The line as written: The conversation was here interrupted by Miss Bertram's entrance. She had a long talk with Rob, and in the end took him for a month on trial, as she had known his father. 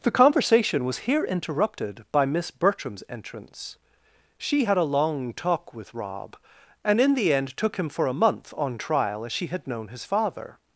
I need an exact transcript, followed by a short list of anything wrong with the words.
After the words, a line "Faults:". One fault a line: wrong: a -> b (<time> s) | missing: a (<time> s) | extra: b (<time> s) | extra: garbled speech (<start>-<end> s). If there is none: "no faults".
The conversation was here interrupted by Miss Bertram's entrance. She had a long talk with Rob, and in the end took him for a month on trial, as she had known his father.
Faults:
no faults